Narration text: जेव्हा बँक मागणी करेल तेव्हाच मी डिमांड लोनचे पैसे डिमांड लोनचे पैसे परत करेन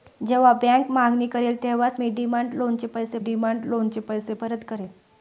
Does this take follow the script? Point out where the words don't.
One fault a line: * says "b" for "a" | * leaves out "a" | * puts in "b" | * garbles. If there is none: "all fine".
all fine